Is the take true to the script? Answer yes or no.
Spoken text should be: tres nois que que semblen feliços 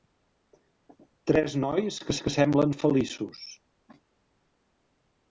yes